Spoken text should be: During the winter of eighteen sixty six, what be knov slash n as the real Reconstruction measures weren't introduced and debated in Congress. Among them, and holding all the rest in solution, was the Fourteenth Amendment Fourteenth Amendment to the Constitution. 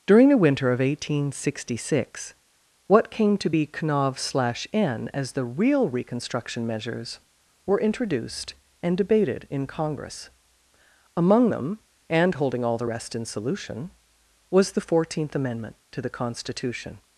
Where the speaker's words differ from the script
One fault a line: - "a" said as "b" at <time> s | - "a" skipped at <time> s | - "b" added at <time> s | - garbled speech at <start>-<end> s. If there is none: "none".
- "came to" added at 3.1 s
- "weren't" said as "were" at 7.7 s
- "Fourteenth Amendment" skipped at 15.8 s